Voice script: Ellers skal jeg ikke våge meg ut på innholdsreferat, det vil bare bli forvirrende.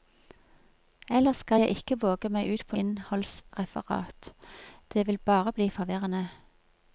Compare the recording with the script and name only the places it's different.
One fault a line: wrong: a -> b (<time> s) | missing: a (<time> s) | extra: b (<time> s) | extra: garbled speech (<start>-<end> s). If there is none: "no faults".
no faults